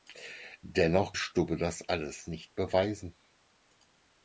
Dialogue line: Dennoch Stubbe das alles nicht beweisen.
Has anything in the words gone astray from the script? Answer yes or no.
no